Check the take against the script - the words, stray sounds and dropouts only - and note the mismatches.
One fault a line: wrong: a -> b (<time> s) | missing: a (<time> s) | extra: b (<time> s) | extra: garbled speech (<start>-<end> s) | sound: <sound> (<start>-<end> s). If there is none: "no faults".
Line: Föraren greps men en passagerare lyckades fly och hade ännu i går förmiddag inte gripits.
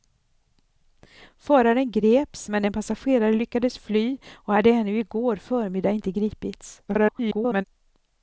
extra: garbled speech (6.9-7.6 s)